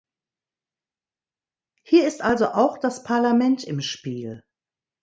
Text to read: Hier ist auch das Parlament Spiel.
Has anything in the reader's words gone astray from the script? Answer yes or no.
yes